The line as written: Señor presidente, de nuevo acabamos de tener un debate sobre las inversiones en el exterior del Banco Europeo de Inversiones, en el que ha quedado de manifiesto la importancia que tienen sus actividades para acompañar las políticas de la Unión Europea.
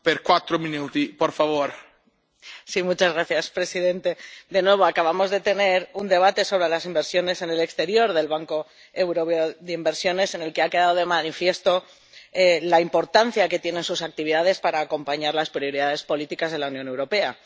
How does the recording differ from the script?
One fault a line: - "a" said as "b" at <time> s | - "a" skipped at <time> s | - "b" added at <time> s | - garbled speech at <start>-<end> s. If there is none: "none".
- "prioridades" added at 15.5 s